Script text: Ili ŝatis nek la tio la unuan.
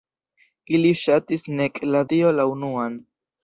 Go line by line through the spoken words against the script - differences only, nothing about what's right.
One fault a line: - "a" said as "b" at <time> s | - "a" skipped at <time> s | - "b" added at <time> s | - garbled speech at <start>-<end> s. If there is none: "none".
none